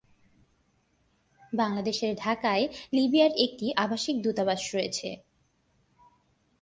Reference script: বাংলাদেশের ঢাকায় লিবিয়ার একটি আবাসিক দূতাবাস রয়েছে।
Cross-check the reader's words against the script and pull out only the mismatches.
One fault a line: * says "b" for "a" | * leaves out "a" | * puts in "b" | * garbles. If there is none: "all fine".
all fine